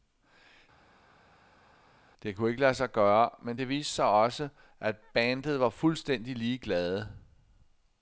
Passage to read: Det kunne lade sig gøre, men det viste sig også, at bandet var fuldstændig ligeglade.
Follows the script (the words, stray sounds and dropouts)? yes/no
no